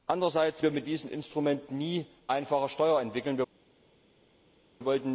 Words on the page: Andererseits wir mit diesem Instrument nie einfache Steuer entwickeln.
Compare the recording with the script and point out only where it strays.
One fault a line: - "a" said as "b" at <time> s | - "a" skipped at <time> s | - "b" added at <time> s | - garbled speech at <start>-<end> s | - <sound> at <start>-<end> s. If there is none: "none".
none